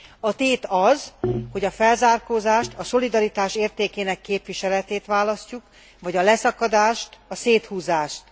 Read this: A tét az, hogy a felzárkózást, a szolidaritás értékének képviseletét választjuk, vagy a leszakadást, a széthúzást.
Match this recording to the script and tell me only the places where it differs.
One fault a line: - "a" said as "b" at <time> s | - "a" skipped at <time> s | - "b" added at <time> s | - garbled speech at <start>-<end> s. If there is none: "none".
none